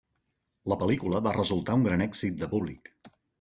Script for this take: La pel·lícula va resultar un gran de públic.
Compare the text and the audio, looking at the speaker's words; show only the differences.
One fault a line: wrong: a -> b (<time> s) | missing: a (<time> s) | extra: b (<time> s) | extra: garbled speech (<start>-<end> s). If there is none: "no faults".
extra: èxit (2.1 s)